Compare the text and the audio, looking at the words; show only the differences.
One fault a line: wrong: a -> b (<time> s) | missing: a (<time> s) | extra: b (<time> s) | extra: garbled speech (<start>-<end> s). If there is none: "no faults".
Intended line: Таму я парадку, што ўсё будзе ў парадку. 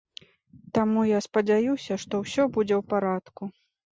wrong: парадку -> спадзяюся (1.2 s)